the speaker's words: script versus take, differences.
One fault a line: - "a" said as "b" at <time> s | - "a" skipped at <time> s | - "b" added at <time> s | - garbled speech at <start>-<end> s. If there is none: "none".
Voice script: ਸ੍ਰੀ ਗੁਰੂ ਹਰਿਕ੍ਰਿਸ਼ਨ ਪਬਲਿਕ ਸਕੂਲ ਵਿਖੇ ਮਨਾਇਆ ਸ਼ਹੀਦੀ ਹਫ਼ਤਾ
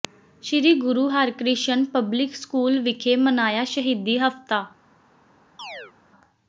none